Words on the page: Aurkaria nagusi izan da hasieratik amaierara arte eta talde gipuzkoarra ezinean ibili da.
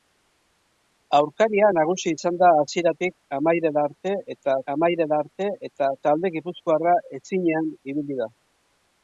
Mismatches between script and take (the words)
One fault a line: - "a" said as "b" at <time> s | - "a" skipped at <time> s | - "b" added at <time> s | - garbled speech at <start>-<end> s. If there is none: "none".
- "amaierara arte eta" added at 4.8 s